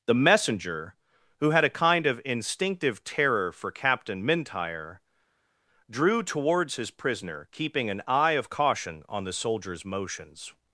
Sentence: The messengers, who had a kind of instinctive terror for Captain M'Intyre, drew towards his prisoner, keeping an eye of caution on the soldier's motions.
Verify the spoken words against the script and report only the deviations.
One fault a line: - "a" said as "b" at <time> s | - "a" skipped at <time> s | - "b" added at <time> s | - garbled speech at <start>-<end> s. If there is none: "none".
- "messengers" said as "messenger" at 0.1 s